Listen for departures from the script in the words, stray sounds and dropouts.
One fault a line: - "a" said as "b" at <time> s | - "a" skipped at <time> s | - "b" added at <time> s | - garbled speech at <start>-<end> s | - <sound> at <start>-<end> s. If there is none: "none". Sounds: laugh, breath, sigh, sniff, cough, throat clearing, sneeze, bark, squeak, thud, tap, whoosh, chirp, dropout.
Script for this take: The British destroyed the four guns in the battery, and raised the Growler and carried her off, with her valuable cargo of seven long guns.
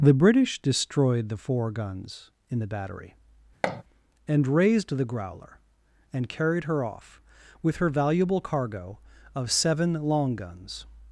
- thud at 3.6-3.8 s